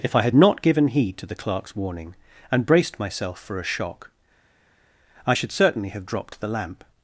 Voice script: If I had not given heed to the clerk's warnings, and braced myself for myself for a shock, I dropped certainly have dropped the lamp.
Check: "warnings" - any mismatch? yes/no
yes